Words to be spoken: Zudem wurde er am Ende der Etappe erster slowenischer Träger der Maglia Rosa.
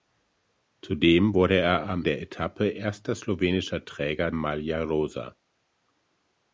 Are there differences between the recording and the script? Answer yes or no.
yes